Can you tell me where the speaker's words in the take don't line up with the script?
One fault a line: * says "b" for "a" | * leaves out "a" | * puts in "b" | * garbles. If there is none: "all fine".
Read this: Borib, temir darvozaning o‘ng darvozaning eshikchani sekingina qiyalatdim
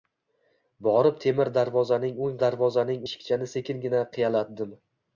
all fine